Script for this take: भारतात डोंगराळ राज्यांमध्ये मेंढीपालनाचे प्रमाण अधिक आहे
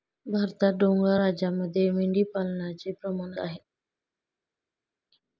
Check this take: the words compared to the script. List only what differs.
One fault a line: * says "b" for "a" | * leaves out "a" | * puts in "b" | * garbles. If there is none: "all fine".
* leaves out "अधिक"